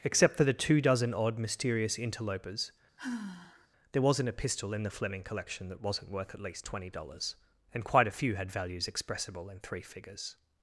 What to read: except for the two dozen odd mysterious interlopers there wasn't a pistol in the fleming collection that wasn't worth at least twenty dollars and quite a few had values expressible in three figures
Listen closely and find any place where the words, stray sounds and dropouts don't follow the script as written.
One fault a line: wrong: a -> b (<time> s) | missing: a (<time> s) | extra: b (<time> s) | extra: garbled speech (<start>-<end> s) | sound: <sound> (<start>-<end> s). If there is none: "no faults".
sound: sigh (3.0-3.7 s)